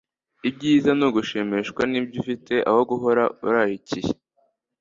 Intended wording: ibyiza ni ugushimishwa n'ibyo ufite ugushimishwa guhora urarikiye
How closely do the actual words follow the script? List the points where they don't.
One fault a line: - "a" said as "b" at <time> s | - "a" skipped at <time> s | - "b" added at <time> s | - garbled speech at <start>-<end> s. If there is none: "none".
- "ugushimishwa" said as "aho" at 2.7 s